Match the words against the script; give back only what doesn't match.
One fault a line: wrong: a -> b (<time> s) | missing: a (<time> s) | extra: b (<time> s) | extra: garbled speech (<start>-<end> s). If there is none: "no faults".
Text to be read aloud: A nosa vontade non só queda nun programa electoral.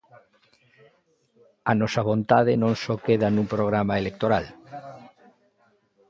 no faults